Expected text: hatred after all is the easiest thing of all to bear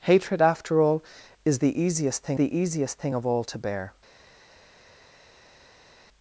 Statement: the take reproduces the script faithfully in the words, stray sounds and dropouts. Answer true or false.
false